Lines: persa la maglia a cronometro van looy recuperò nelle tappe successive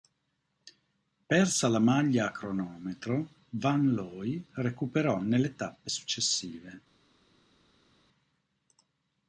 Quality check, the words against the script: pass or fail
pass